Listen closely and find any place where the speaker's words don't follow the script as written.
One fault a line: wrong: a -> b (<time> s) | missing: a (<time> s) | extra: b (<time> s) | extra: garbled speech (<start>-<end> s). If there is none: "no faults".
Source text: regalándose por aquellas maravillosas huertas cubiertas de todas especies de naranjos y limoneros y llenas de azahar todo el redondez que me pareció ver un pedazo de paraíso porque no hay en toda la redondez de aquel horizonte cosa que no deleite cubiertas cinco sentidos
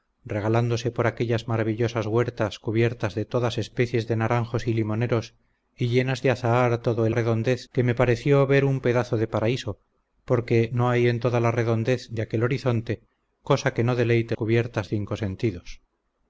no faults